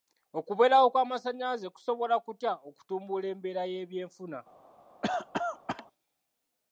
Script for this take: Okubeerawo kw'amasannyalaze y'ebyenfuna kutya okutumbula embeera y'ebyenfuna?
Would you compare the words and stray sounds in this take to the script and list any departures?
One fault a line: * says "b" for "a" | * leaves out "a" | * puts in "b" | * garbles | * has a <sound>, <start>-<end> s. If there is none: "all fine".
* says "kusobola" for "y'ebyenfuna"
* has a cough, 5.0-5.9 s